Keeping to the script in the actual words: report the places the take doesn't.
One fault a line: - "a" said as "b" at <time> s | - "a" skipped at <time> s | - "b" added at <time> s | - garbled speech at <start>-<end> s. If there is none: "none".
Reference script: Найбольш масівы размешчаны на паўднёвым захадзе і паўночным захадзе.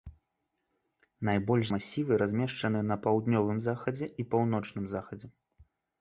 none